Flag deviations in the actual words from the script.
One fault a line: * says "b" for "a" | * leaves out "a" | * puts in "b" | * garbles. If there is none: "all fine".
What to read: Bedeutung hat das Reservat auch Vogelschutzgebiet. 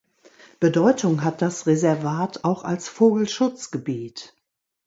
* puts in "als"